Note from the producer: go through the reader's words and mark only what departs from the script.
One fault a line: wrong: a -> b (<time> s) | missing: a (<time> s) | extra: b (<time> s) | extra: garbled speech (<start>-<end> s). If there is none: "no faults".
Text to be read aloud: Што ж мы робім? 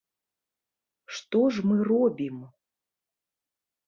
no faults